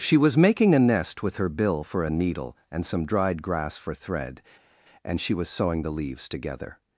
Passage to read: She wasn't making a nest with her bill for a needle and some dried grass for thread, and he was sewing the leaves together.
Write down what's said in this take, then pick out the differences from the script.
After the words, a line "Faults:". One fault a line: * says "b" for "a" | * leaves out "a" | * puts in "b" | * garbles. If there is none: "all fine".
She was making a nest with her bill for a needle and some dried grass for thread, and she was sewing the leaves together.
Faults:
* says "was" for "wasn't"
* says "she" for "he"